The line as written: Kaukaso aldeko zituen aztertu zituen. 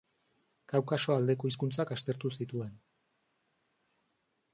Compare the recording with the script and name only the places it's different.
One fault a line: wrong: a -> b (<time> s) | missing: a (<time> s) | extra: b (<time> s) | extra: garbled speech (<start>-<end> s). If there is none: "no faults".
wrong: zituen -> hizkuntzak (1.5 s)